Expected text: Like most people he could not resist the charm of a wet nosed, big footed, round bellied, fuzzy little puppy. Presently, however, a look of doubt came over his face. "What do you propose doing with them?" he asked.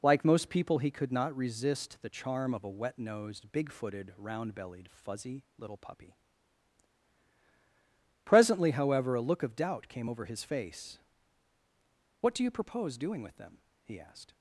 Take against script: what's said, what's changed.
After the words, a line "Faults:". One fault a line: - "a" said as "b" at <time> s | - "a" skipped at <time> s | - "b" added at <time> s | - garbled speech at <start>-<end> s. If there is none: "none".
Like most people he could not resist the charm of a wet nosed, big footed, round bellied, fuzzy little puppy. Presently, however, a look of doubt came over his face. "What do you propose doing with them?" he asked.
Faults:
none